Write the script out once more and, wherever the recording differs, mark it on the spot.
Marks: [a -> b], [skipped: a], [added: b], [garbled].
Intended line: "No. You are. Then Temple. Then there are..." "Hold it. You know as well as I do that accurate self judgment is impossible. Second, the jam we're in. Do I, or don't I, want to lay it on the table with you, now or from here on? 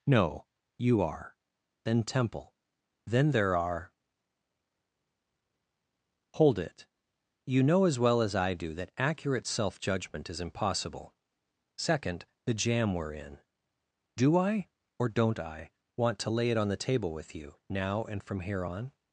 "No. You are. Then Temple. Then there are..." "Hold it. You know as well as I do that accurate self judgment is impossible. Second, the jam we're in. Do I, or don't I, want to lay it on the table with you, now [or -> and] from here on?